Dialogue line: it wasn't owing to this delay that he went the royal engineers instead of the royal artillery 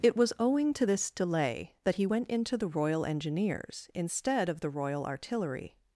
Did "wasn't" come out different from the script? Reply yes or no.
yes